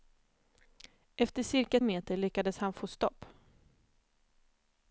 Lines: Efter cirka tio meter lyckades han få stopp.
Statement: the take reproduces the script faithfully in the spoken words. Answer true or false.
false